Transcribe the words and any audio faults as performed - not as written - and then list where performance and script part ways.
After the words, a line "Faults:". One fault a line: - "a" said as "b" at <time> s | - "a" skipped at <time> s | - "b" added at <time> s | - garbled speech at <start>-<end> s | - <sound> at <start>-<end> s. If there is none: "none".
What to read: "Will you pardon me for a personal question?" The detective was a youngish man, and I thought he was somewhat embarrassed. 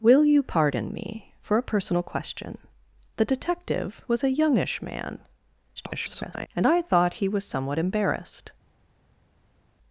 "Will you pardon me for a personal question?" The detective was a youngish man, [garbled] and I thought he was somewhat embarrassed.
Faults:
- garbled speech at 5.8-6.5 s